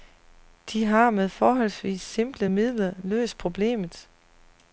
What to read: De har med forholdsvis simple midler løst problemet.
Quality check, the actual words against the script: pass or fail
pass